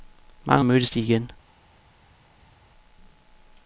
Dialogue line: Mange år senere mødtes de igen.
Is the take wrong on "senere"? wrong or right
wrong